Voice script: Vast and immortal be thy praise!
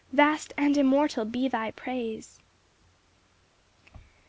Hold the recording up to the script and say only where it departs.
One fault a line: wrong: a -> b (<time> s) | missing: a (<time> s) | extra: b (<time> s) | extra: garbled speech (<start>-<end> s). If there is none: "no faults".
no faults